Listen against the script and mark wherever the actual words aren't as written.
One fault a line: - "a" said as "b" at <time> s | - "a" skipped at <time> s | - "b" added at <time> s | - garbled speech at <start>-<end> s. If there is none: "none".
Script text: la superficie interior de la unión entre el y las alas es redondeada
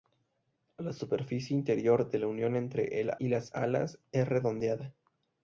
none